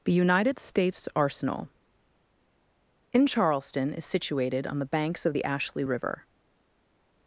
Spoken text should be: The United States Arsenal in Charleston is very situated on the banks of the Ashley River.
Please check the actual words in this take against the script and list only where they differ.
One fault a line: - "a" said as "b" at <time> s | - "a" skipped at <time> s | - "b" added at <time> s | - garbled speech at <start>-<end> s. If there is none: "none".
- "very" skipped at 4.0 s